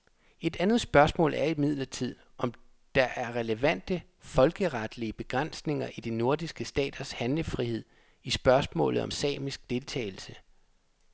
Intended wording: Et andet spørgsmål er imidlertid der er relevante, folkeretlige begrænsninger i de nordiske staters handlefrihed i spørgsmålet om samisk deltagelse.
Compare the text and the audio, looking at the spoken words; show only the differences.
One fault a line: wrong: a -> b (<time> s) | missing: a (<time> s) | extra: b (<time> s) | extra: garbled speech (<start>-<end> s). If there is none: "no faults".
extra: om (2.4 s)